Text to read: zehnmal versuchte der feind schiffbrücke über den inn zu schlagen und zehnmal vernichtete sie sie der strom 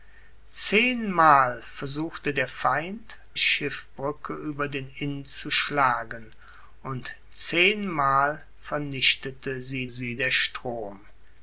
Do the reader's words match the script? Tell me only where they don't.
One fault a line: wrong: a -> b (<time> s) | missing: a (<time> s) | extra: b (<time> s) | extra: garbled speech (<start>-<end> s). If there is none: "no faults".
no faults